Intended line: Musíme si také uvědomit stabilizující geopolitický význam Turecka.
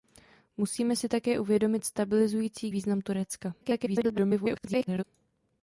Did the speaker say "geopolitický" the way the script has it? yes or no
no